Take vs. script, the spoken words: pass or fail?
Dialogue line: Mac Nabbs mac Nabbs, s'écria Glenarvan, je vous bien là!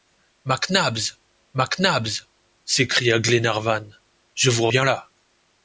pass